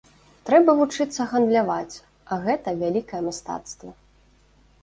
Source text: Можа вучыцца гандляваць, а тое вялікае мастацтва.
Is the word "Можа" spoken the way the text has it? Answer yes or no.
no